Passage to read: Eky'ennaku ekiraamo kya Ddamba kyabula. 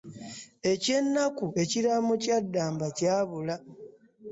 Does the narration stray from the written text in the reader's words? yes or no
no